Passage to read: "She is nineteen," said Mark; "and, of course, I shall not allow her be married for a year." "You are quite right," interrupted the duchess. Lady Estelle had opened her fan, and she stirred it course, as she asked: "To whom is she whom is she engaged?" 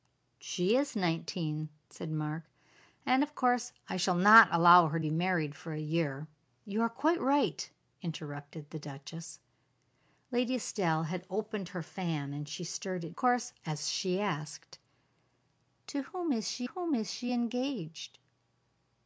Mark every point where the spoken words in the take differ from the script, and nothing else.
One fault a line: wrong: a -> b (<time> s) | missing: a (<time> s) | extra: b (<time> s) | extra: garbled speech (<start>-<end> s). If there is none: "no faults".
no faults